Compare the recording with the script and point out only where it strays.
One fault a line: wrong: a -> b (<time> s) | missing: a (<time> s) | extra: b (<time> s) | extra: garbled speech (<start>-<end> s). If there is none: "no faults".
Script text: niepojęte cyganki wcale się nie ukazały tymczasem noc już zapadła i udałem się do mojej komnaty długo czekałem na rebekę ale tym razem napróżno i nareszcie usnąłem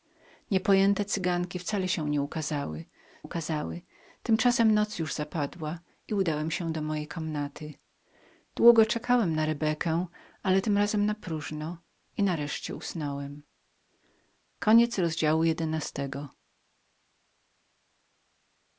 extra: ukazały (3.2 s)